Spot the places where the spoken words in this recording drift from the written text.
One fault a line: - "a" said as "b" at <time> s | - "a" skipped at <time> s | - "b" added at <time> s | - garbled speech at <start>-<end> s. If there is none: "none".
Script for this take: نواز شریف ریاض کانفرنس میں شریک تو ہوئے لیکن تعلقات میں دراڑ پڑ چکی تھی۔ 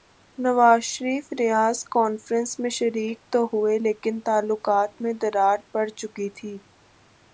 none